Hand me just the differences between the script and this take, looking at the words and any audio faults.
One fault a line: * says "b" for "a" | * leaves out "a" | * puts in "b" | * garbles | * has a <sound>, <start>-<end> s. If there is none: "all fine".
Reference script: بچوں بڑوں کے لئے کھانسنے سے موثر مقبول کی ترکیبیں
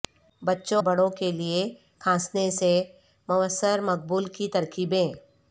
all fine